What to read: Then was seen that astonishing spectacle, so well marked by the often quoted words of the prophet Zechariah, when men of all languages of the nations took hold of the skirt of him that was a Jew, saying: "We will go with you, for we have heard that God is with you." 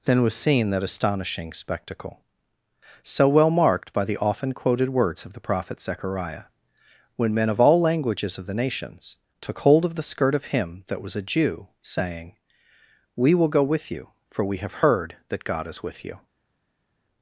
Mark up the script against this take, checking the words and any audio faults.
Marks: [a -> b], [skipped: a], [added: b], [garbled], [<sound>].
Then was seen that astonishing spectacle, so well marked by the often quoted words of the prophet Zechariah, when men of all languages of the nations took hold of the skirt of him that was a Jew, saying: "We will go with you, for we have heard that God is with you."